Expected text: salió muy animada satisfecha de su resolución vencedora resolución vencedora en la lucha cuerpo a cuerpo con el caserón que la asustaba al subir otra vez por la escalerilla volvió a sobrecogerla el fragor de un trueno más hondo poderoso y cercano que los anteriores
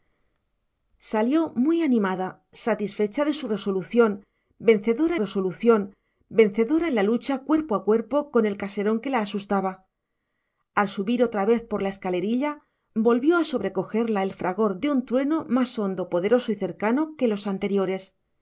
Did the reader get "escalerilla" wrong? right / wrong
right